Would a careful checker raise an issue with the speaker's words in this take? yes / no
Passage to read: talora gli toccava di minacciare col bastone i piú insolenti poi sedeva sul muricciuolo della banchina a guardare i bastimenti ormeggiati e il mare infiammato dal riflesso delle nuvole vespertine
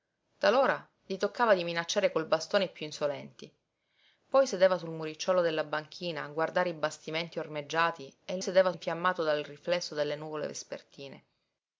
yes